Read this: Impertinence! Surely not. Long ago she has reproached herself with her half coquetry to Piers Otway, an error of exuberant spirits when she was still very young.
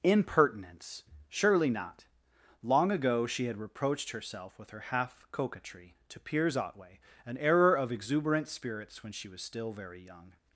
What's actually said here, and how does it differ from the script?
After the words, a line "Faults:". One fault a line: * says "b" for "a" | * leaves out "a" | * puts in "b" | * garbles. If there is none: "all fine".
Impertinence! Surely not. Long ago she had reproached herself with her half coquetry to Piers Otway, an error of exuberant spirits when she was still very young.
Faults:
* says "had" for "has"